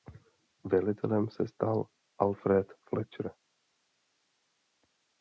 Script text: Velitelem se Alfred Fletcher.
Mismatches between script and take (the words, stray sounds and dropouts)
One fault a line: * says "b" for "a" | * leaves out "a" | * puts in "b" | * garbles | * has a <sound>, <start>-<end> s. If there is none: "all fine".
* puts in "stal"